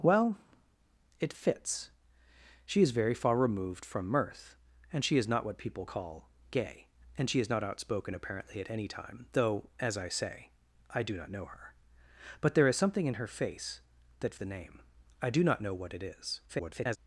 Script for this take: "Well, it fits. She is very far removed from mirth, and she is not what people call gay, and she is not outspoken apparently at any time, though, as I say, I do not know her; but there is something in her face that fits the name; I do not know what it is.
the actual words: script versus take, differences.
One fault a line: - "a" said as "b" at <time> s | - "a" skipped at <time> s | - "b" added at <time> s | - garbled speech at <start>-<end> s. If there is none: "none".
- "fits" skipped at 14.3 s
- garbled speech at 16.5-17.0 s